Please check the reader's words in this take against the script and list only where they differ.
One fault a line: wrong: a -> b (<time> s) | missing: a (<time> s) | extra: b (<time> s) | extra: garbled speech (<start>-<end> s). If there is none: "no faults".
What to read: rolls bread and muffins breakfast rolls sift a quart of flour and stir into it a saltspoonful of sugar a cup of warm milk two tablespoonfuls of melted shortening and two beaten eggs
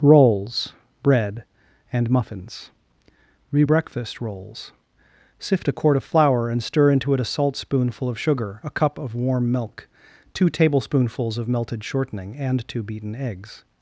extra: re (3.5 s)